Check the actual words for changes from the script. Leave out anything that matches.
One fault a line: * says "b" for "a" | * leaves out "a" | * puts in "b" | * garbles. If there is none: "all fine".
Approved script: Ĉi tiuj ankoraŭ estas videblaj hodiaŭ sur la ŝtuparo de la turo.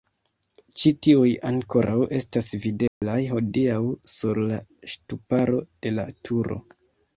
all fine